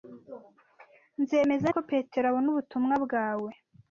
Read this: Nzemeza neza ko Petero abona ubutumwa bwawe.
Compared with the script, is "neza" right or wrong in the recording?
wrong